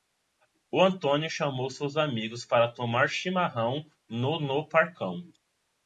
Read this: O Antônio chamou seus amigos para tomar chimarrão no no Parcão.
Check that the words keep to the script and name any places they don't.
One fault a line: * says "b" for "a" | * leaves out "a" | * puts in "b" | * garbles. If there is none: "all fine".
all fine